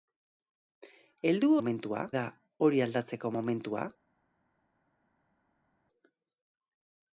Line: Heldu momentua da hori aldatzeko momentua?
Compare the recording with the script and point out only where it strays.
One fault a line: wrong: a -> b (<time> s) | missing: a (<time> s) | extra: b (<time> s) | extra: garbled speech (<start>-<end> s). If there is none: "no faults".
no faults